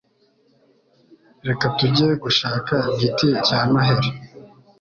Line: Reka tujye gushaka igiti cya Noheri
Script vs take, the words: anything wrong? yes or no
no